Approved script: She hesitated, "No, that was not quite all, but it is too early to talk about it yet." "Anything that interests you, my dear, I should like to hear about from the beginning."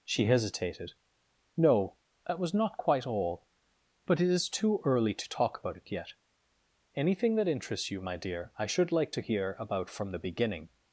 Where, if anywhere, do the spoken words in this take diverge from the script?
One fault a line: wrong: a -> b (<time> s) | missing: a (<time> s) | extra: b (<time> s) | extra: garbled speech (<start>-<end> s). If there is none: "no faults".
no faults